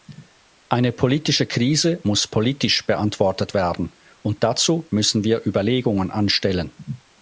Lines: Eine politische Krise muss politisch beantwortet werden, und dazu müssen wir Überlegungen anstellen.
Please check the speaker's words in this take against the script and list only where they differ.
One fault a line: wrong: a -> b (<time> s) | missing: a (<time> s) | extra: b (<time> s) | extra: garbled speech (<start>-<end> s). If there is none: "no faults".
no faults